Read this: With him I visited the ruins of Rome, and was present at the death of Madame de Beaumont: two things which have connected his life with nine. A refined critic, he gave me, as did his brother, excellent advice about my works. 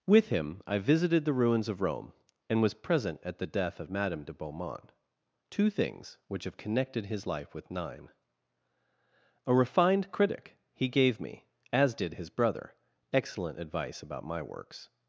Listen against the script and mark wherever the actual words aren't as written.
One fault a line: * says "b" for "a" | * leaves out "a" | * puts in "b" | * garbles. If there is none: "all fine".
all fine